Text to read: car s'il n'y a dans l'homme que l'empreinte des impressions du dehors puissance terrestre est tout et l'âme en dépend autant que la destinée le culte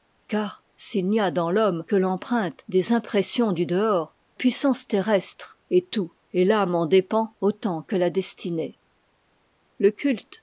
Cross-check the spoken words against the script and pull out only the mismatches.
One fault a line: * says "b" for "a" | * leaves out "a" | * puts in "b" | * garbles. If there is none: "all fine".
all fine